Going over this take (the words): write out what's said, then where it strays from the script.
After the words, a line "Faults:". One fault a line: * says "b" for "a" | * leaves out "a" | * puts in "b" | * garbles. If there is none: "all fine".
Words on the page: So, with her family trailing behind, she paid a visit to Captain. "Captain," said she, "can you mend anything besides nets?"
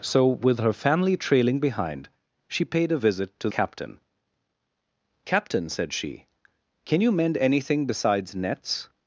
So, with her family trailing behind, she paid a visit to Captain. "Captain," said she, "can you mend anything besides nets?"
Faults:
all fine